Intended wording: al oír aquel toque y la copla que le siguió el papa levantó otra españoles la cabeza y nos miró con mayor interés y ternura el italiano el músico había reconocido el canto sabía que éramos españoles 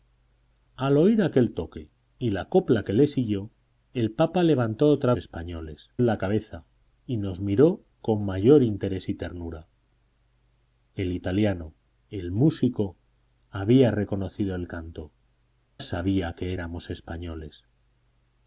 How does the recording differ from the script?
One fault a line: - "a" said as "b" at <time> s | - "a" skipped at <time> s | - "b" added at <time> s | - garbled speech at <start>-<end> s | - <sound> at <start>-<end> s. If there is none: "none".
none